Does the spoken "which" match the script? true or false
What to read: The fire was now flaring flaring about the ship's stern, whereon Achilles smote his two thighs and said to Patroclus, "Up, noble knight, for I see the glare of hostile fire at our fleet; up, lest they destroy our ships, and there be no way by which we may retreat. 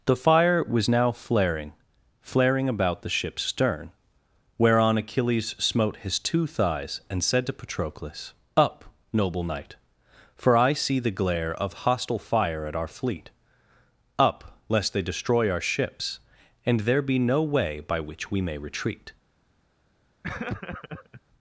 true